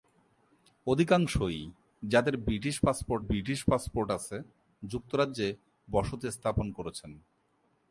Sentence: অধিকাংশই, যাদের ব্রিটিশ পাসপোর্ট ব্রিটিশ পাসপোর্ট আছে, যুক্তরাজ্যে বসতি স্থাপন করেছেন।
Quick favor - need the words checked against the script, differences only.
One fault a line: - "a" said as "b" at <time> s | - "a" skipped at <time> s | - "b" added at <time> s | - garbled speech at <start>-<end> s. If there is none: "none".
none